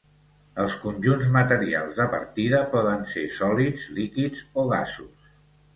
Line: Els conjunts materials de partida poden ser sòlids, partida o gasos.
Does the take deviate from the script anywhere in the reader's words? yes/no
yes